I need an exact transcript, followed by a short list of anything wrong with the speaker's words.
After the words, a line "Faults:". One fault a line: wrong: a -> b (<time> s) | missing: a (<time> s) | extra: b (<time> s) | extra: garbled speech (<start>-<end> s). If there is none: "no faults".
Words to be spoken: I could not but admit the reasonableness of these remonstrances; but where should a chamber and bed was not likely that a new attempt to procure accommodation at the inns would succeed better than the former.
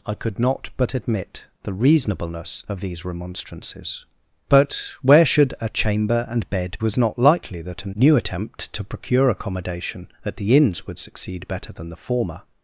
I could not but admit the reasonableness of these remonstrances; but where should a chamber and bed was not likely that a new attempt to procure accommodation at the inns would succeed better than the former.
Faults:
no faults